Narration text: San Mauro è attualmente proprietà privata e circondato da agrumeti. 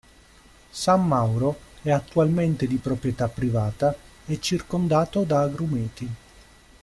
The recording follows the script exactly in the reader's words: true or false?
false